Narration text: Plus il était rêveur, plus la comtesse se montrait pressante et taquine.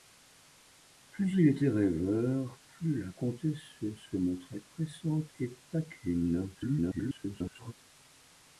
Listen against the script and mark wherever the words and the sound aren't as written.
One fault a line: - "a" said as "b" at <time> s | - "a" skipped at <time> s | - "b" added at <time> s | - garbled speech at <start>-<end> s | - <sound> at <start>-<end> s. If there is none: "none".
- garbled speech at 6.5-7.7 s